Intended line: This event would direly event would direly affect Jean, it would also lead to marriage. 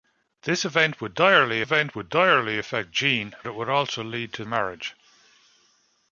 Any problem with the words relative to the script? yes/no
no